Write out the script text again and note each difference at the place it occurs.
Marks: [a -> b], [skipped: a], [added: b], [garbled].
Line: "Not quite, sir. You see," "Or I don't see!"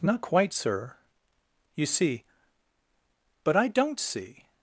"Not quite, sir. You see," ["Or -> But] I don't see!"